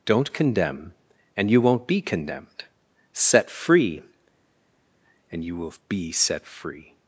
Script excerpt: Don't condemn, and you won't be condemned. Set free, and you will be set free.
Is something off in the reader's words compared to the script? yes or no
no